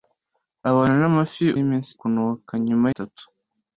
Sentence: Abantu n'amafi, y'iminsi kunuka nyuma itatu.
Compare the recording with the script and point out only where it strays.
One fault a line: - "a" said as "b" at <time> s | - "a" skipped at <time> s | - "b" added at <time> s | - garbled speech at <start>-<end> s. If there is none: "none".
none